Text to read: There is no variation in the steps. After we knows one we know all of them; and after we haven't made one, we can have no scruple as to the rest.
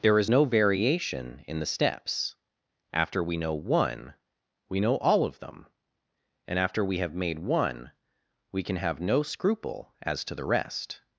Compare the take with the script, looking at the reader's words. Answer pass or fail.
fail